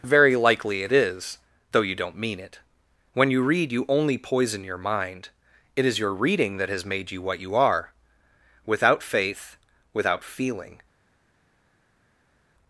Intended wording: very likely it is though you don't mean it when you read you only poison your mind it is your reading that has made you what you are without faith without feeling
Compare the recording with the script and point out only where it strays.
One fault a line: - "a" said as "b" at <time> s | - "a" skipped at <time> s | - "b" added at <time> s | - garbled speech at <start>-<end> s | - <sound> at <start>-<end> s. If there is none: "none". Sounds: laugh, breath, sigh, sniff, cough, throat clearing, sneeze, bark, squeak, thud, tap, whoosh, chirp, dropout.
none